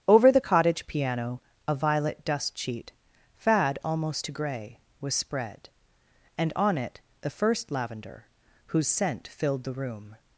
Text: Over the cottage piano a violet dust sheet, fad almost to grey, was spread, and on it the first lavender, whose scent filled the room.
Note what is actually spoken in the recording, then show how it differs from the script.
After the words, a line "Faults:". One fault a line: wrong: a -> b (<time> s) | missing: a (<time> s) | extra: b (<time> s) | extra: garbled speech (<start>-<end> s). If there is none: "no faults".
Over the cottage piano a violet dust sheet, fad almost to grey, was spread, and on it the first lavender, whose scent filled the room.
Faults:
no faults